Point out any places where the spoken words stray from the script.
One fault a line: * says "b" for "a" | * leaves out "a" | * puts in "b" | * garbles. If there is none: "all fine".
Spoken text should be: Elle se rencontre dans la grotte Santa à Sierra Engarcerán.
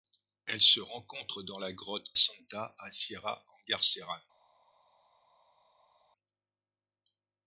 all fine